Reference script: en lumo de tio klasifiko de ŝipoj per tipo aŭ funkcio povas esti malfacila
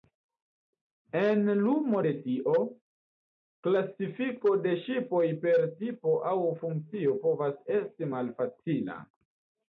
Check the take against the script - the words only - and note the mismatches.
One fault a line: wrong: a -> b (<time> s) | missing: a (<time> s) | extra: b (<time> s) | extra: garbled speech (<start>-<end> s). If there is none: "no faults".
no faults